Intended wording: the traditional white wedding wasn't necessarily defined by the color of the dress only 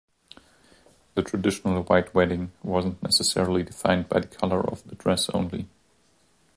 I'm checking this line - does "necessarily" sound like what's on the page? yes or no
yes